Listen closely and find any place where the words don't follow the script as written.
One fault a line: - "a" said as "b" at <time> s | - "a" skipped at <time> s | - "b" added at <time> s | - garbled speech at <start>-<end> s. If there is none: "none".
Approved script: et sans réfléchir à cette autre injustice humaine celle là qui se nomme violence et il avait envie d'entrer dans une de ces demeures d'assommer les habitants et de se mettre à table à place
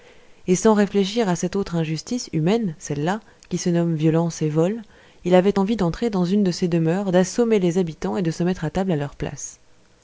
- "vol" added at 4.5 s
- "leur" added at 9.0 s